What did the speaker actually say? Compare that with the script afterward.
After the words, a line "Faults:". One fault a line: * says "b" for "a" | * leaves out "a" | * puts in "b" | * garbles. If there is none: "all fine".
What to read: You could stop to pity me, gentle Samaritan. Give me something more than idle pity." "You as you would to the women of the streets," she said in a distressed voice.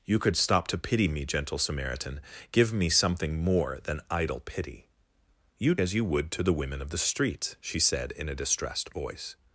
You could stop to pity me, gentle Samaritan. Give me something more than idle pity." "You as you would to the women of the streets," she said in a distressed voice.
Faults:
all fine